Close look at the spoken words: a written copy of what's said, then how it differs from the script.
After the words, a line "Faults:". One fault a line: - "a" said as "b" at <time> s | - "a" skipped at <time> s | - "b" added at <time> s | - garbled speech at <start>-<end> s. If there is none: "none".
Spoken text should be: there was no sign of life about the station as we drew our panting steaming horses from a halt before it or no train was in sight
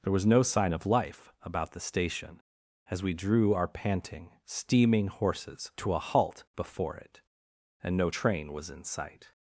there was no sign of life about the station as we drew our panting steaming horses to a halt before it and no train was in sight
Faults:
- "from" said as "to" at 5.8 s
- "or" said as "and" at 7.8 s